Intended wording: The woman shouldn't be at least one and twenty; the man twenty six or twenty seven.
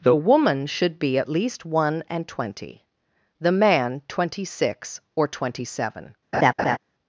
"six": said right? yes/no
yes